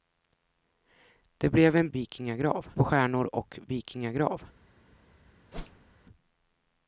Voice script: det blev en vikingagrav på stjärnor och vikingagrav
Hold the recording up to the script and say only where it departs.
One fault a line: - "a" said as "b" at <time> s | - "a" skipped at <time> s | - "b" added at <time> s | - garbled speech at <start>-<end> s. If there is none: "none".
none